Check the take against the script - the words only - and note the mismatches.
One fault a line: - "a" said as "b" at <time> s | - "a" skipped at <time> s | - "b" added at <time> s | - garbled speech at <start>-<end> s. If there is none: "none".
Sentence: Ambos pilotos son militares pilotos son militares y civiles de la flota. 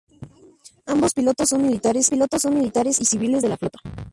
none